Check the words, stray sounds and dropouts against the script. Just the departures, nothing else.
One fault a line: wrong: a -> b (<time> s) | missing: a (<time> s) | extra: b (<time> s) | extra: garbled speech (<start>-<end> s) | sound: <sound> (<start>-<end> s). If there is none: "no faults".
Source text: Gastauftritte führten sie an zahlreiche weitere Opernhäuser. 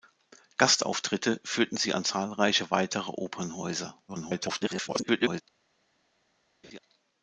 extra: garbled speech (4.1-5.4 s)
sound: laugh (6.6-6.8 s)